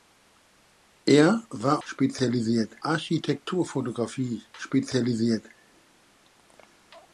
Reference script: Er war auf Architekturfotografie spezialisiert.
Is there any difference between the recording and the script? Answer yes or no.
yes